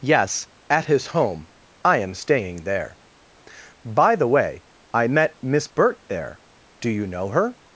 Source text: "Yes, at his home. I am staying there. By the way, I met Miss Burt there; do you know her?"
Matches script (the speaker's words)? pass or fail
pass